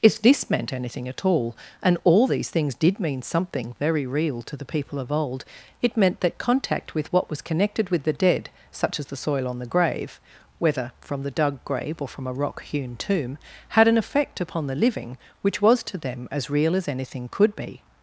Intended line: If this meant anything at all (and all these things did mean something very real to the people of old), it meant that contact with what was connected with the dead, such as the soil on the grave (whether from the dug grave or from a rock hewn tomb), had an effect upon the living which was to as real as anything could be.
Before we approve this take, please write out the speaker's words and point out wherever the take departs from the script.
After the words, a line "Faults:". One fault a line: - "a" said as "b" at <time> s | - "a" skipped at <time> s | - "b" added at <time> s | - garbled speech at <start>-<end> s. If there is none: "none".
If this meant anything at all (and all these things did mean something very real to the people of old), it meant that contact with what was connected with the dead, such as the soil on the grave (whether from the dug grave or from a rock hewn tomb), had an effect upon the living which was to them as real as anything could be.
Faults:
- "them" added at 16.0 s